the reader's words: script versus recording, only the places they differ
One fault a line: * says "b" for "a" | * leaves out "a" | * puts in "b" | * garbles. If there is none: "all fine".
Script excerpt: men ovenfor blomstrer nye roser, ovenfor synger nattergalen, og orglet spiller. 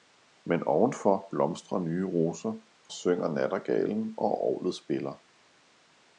* leaves out "ovenfor"